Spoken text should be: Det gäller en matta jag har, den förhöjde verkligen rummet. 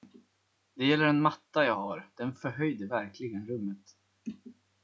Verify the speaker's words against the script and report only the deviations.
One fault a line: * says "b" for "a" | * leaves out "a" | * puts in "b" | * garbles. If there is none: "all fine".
all fine